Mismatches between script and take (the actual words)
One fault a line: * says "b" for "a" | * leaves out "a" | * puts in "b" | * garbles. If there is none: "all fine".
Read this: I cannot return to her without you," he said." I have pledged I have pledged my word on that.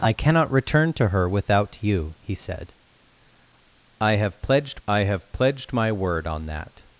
all fine